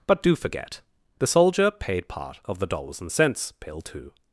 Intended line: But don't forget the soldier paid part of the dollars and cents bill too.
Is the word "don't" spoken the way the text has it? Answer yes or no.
no